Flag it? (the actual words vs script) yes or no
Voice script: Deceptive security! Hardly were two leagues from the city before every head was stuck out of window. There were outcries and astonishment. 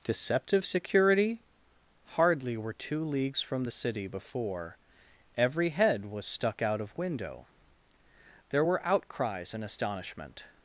no